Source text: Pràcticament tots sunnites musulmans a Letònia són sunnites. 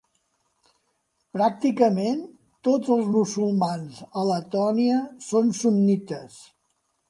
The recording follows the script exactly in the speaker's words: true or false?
false